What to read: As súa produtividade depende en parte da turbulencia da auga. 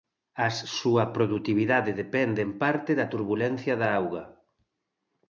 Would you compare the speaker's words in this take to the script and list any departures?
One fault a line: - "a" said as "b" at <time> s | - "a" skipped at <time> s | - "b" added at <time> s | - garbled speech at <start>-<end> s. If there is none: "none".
none